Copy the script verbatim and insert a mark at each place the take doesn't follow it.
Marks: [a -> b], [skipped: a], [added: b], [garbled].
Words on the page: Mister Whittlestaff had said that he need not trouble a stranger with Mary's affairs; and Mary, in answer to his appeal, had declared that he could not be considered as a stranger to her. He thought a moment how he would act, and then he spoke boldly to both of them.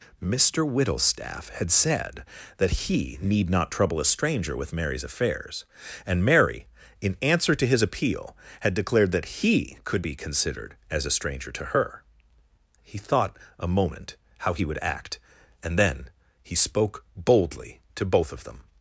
Mister Whittlestaff had said that he need not trouble a stranger with Mary's affairs; and Mary, in answer to his appeal, had declared that he could [skipped: not] be considered as a stranger to her. He thought a moment how he would act, and then he spoke boldly to both of them.